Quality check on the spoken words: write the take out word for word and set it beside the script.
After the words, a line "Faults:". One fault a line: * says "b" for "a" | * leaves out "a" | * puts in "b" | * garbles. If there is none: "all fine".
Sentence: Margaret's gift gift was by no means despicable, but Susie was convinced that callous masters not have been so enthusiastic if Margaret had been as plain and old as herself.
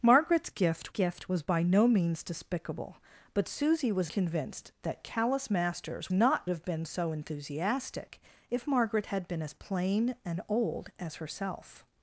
Margaret's gift gift was by no means despicable, but Susie was convinced that callous masters not have been so enthusiastic if Margaret had been as plain and old as herself.
Faults:
all fine